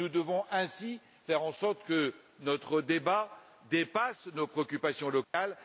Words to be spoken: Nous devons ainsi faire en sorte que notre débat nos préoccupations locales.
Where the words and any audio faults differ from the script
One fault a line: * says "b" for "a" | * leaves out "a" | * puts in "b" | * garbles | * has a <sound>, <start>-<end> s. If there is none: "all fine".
* puts in "dépasse"
* has a dropout, 5.2-5.3 s